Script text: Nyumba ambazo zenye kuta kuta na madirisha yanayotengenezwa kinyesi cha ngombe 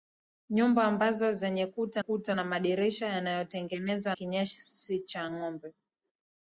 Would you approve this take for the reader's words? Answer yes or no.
yes